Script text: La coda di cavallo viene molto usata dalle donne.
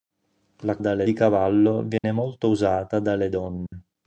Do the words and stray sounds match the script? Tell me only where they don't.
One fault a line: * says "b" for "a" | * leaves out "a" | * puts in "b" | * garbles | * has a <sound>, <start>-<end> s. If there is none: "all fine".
* says "dalle" for "coda"
* has a dropout, 2.0-2.0 s
* has a dropout, 3.7-3.7 s